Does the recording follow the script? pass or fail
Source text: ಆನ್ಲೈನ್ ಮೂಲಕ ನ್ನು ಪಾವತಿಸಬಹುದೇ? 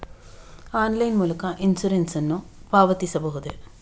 fail